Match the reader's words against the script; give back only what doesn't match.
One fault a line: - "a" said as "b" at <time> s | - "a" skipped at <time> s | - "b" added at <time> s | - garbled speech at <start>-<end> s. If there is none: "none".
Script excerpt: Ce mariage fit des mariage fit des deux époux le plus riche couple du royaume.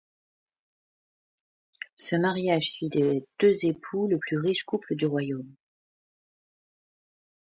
- "mariage fit des" skipped at 3.2 s